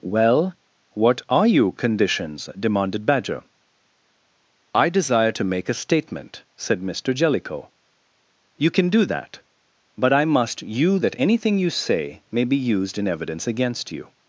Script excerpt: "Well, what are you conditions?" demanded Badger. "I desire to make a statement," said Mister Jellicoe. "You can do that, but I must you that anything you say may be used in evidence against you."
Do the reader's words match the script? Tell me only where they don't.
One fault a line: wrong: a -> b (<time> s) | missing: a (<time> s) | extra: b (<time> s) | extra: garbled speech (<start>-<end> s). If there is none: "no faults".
no faults